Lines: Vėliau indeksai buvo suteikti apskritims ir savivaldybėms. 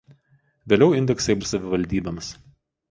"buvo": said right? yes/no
no